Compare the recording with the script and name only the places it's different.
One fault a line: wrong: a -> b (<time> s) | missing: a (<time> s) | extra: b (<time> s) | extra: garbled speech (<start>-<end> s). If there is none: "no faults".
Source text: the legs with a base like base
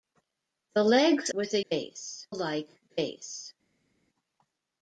no faults